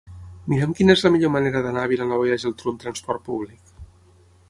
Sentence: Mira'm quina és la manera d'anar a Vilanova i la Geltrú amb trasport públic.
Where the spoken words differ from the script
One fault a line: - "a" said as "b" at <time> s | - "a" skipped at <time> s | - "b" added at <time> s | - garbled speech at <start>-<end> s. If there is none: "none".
- "millor" added at 1.2 s